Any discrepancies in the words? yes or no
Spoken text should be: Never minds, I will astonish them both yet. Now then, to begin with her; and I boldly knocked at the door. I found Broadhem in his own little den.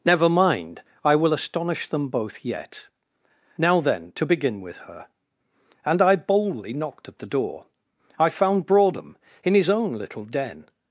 yes